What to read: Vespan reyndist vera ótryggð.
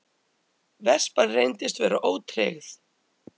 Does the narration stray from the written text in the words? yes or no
no